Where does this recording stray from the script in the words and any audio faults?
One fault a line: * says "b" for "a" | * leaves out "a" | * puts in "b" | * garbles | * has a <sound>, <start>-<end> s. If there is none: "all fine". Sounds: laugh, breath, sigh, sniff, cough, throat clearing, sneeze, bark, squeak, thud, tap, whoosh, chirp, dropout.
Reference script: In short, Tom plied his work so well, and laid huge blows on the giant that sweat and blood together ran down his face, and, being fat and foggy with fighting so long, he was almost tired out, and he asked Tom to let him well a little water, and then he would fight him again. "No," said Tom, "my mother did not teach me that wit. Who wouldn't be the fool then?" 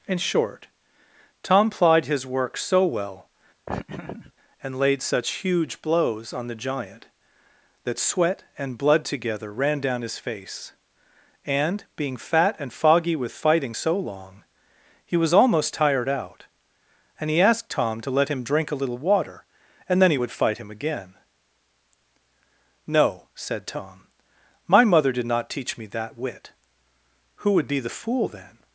* has a laugh, 3.7-4.3 s
* puts in "such"
* says "drink" for "well"
* says "would" for "wouldn't"